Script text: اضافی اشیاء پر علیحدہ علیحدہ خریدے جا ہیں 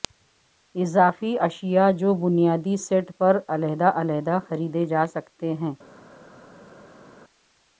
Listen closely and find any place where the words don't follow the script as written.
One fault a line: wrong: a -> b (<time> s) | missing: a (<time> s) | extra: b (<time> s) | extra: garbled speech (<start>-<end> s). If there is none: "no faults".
extra: جو بنیادی سیٹ (1.9 s)
extra: سکتے (5.1 s)